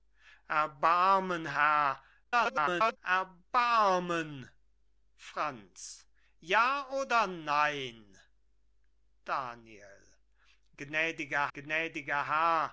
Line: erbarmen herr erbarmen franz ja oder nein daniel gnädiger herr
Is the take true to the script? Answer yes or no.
no